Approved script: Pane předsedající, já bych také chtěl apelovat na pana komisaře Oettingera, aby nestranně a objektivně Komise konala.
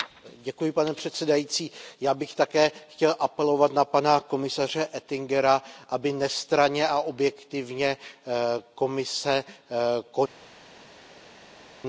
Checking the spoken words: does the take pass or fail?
pass